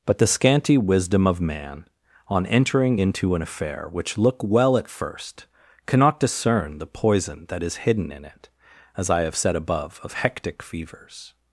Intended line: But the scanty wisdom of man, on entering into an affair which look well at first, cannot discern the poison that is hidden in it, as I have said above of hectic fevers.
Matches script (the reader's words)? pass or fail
pass